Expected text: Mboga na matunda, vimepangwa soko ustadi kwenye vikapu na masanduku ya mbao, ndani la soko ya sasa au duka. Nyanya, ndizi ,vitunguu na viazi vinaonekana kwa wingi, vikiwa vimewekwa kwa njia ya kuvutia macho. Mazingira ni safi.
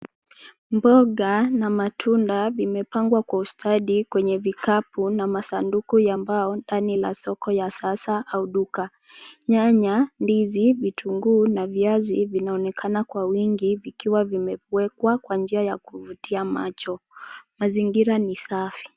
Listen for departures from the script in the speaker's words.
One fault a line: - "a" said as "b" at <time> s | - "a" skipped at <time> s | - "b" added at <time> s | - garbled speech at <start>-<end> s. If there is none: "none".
- "soko" said as "kwa" at 3.2 s